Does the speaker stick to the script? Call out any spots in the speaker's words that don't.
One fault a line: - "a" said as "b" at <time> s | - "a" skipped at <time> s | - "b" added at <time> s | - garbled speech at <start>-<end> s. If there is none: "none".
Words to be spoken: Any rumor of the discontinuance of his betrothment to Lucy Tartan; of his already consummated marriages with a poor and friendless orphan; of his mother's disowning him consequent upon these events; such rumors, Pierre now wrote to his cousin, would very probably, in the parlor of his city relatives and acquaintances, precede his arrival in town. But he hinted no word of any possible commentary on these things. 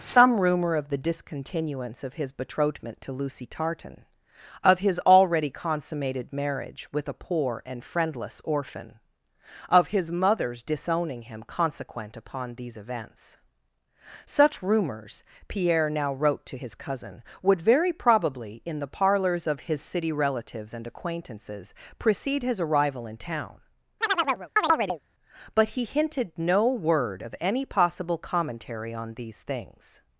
- "Any" said as "Some" at 0.0 s
- "marriages" said as "marriage" at 6.3 s
- "parlor" said as "parlors" at 18.9 s